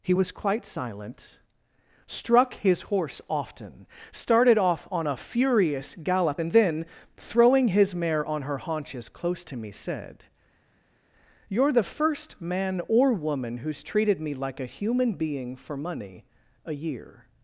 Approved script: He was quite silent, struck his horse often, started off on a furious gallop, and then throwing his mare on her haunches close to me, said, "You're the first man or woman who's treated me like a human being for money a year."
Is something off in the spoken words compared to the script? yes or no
no